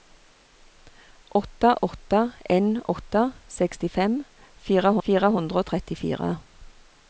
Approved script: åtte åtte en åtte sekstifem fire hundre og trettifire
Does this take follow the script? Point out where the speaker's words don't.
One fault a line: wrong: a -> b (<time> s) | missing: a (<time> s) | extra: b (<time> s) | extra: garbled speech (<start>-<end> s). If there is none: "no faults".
extra: fire (5.1 s)